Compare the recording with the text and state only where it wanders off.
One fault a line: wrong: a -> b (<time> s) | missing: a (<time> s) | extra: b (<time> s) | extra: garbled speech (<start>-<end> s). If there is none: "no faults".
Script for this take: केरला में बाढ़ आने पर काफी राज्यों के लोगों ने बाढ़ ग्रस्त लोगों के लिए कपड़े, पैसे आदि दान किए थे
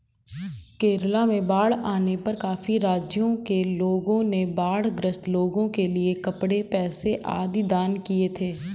no faults